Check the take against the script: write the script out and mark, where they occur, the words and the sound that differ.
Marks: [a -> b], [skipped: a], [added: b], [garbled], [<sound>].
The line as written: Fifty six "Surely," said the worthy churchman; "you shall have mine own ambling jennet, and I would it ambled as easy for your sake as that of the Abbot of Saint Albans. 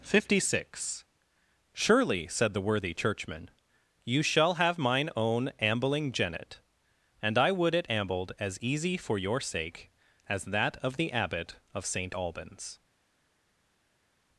Fifty six "Surely," said the worthy churchman; "you shall have mine own ambling jennet, and I would it ambled as easy for your sake as that of the Abbot of Saint Albans.